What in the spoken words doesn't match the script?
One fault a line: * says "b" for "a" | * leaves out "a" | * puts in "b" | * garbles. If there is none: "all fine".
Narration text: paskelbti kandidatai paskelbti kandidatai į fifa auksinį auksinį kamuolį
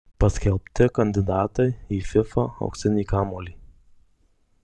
* leaves out "paskelbti kandidatai"
* leaves out "auksinį"